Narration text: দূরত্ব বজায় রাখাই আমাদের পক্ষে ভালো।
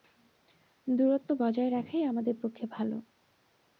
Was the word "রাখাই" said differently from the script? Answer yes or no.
no